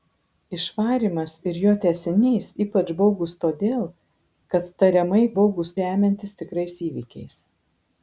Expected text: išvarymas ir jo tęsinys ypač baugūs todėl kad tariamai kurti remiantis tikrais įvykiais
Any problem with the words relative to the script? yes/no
yes